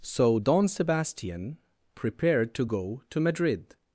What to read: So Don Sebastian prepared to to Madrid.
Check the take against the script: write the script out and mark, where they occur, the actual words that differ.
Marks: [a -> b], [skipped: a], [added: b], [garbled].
So Don Sebastian prepared to [added: go] to Madrid.